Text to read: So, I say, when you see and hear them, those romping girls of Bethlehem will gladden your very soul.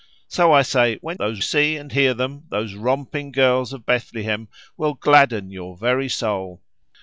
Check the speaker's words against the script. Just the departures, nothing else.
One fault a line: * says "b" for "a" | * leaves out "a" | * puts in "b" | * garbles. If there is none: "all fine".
* says "those" for "you"